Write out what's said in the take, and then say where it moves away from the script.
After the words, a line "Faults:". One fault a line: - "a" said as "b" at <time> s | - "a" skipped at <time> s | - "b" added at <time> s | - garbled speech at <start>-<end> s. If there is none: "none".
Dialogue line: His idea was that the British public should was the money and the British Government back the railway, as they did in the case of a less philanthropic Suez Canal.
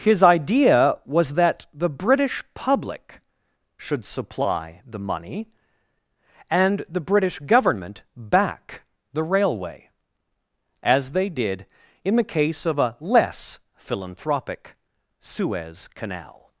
His idea was that the British public should supply the money and the British Government back the railway, as they did in the case of a less philanthropic Suez Canal.
Faults:
- "was" said as "supply" at 4.0 s